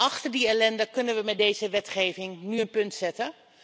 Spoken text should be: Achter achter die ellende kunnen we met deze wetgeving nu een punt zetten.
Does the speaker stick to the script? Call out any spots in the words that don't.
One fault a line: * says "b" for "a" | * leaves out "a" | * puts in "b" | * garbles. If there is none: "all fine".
* leaves out "achter"